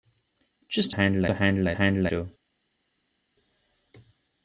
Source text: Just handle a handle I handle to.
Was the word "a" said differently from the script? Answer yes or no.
no